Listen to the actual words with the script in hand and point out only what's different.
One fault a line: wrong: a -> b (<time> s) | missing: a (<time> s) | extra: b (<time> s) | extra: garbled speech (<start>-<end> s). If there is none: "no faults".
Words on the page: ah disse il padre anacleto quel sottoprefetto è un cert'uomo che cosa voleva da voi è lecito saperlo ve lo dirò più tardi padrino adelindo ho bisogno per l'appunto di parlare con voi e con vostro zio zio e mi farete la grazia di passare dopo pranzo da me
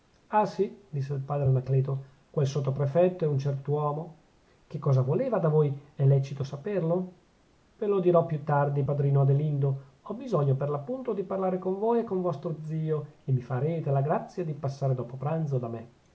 extra: sì (0.5 s)
missing: zio (13.1 s)